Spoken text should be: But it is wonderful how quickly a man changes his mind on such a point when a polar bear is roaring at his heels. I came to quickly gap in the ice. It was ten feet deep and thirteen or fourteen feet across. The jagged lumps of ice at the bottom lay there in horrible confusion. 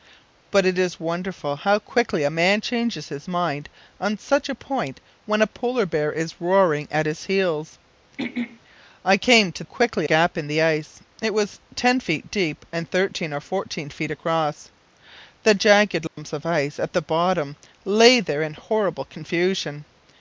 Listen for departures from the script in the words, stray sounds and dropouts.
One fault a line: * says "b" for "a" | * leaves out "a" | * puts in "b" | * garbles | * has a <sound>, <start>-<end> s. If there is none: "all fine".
* has a throat clearing, 8.2-8.6 s
* has a dropout, 16.1-16.2 s